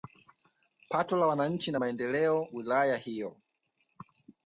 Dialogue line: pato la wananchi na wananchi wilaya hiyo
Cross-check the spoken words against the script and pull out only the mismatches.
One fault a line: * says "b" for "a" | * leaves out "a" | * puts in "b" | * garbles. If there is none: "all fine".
* says "maendeleo" for "wananchi"